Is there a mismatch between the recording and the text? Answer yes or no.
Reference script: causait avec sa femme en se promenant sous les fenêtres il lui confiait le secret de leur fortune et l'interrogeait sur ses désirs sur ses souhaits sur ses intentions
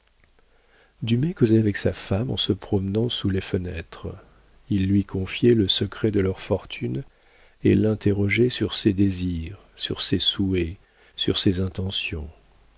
no